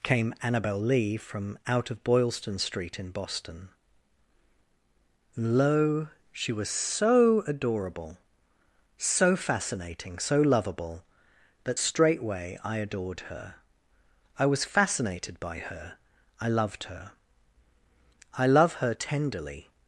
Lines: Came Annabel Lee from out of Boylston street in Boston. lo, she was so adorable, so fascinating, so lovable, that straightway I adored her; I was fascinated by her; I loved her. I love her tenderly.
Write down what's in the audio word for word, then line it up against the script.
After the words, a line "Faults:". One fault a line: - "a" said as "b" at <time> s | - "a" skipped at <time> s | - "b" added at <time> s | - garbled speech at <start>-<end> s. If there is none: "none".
Came Annabel Lee from out of Boylston street in Boston. lo, she was so adorable, so fascinating, so lovable, that straightway I adored her; I was fascinated by her; I loved her. I love her tenderly.
Faults:
none